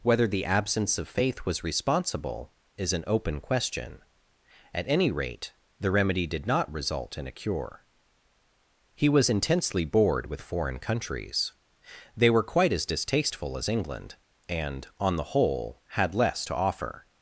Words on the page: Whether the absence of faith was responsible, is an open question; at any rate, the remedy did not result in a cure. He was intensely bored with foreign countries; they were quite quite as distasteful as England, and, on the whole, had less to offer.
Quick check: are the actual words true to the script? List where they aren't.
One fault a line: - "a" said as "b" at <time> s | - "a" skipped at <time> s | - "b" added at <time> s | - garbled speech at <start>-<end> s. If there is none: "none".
- "quite" skipped at 12.7 s